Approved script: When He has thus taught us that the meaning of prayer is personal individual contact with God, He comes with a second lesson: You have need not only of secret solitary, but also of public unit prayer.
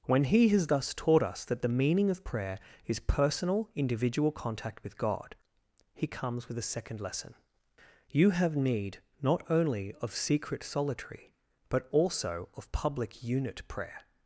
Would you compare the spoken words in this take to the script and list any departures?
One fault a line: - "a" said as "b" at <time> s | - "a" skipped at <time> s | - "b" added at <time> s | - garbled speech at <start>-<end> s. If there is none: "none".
none